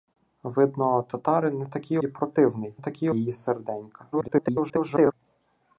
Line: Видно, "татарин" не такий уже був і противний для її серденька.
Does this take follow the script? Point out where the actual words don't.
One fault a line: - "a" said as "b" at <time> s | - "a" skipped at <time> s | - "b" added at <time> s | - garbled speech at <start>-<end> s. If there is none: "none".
- "уже був" skipped at 2.0 s
- "для" said as "такий" at 2.8 s
- garbled speech at 4.1-5.1 s